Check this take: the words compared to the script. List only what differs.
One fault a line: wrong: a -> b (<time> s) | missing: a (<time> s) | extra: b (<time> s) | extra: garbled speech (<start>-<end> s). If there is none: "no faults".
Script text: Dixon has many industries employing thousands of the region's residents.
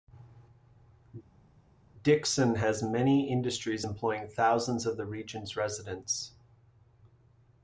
no faults